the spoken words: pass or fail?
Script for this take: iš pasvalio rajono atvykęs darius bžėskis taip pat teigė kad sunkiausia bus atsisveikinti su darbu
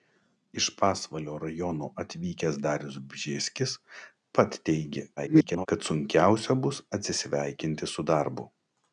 fail